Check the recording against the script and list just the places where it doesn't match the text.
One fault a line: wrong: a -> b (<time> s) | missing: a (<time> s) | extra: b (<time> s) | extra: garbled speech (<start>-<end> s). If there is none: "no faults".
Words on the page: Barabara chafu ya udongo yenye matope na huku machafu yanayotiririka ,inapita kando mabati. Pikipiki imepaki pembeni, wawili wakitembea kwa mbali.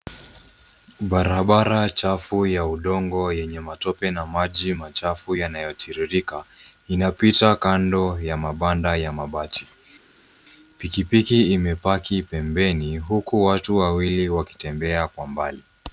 wrong: huku -> maji (4.2 s)
extra: ya mabanda ya (8.2 s)
extra: huku watu (13.0 s)